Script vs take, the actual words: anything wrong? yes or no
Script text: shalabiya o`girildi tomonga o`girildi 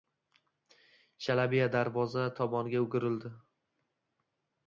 yes